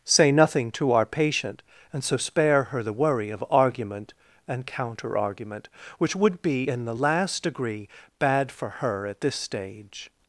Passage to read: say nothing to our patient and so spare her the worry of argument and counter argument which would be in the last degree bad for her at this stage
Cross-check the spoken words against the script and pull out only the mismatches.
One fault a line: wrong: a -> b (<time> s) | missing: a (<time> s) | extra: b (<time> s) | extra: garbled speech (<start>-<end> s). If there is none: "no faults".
no faults